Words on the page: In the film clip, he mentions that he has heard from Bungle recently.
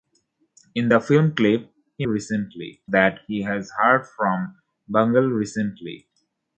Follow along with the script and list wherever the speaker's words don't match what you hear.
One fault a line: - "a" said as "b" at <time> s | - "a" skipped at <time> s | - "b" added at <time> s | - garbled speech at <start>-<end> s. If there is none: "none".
- "mentions" said as "recently" at 2.0 s